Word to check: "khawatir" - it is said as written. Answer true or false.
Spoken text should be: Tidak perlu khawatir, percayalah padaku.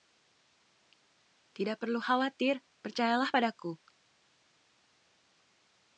true